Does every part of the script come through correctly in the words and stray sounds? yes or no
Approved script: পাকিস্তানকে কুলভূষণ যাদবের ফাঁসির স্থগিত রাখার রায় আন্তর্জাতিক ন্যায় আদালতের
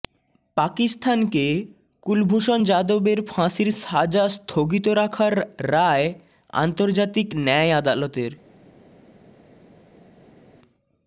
no